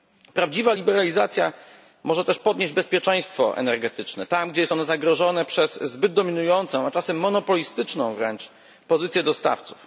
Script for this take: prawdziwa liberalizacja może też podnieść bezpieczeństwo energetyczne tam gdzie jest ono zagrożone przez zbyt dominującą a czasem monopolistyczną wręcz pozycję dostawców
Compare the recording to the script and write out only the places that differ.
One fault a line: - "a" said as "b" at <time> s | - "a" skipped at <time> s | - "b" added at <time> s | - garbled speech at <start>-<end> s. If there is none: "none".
none